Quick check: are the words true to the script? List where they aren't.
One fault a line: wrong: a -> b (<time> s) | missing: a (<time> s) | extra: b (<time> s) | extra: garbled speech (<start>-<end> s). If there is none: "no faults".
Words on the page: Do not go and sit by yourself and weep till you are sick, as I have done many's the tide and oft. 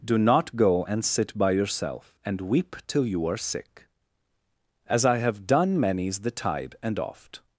no faults